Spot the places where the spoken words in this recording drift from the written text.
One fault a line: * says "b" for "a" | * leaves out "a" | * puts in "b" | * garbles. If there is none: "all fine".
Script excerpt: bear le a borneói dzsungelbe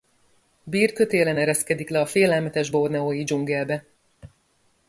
* puts in "kötélen ereszkedik"
* puts in "félelmetes"